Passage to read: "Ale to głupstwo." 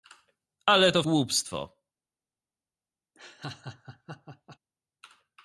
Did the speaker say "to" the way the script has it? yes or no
yes